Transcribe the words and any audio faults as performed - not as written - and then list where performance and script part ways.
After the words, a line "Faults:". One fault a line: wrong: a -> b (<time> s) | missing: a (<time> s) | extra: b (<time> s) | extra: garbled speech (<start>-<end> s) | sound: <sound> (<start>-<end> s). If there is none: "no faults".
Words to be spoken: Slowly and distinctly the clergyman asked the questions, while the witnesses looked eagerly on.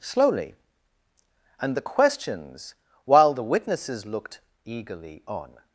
Slowly and the questions, while the witnesses looked eagerly on.
Faults:
missing: distinctly the clergyman asked (1.7 s)